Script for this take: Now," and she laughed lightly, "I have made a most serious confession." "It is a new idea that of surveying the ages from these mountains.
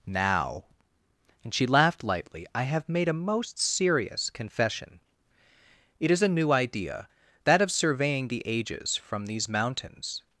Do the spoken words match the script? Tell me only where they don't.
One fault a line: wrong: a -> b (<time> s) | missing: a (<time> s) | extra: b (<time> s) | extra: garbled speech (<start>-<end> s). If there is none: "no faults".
no faults